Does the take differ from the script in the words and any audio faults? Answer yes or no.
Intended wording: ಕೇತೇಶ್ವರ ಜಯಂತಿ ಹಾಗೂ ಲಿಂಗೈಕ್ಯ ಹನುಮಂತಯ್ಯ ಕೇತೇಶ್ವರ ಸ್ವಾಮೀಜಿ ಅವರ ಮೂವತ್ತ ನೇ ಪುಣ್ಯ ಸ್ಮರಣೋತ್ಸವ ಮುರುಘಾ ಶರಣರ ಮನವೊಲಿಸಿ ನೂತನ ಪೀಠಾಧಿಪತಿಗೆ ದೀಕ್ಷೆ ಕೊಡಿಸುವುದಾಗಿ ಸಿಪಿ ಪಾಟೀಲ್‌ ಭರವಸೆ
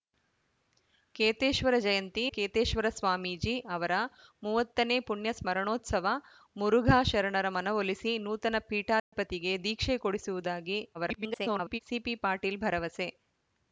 yes